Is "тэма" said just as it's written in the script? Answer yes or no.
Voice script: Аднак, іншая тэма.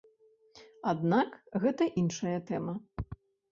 yes